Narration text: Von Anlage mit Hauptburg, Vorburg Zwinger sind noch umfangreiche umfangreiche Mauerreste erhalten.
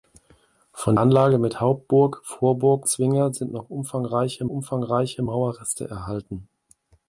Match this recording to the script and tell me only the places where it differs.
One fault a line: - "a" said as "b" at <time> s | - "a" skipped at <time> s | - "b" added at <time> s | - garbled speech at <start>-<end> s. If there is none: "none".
none